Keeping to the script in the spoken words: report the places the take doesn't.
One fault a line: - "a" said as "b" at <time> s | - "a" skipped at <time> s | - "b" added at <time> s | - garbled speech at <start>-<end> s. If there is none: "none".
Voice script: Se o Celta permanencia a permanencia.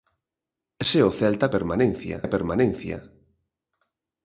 none